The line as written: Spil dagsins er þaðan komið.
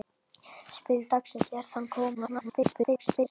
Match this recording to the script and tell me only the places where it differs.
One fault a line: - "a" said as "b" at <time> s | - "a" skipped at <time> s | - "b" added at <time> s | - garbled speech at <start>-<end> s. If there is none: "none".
- garbled speech at 2.1-3.3 s